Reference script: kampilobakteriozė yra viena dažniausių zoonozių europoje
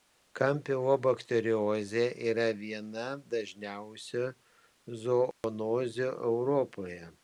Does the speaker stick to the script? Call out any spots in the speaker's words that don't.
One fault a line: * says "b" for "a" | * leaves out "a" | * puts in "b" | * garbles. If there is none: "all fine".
all fine